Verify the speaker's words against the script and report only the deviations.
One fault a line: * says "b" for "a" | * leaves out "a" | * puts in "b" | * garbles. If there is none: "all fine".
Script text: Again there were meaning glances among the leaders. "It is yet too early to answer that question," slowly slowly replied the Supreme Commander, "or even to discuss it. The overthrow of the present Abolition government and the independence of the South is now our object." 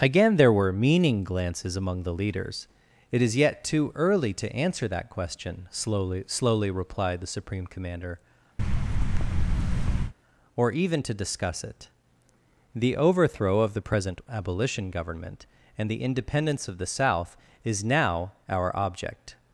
all fine